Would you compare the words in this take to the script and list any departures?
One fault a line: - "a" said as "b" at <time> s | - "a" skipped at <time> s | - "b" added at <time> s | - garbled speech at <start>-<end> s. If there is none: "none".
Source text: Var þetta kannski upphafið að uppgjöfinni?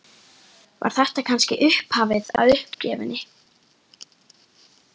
none